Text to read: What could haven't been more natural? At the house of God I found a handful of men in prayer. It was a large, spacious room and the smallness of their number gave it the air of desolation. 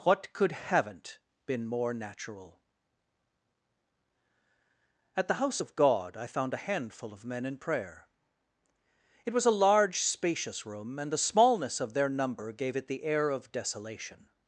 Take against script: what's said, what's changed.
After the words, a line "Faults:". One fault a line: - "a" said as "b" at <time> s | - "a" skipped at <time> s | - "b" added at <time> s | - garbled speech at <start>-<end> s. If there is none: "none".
What could haven't been more natural? At the house of God I found a handful of men in prayer. It was a large, spacious room and the smallness of their number gave it the air of desolation.
Faults:
none